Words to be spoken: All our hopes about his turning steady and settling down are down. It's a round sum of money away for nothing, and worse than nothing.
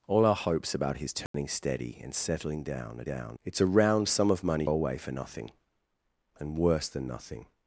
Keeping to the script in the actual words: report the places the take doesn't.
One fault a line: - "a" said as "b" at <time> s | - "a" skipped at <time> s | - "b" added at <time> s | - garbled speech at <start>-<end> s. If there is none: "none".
none